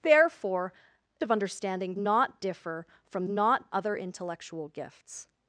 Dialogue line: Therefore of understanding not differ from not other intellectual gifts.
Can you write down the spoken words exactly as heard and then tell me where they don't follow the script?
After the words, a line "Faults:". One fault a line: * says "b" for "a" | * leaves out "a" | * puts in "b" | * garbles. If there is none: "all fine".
Therefore of understanding not differ from not other intellectual gifts.
Faults:
all fine